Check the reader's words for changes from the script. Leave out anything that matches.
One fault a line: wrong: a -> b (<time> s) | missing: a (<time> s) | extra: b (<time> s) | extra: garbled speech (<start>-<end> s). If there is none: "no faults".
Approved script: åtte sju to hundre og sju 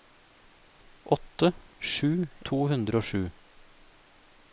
no faults